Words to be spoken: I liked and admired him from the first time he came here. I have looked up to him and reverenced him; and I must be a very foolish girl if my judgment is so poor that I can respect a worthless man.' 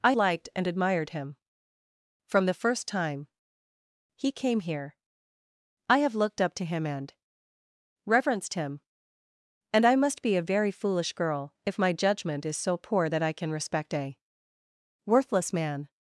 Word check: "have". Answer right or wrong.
right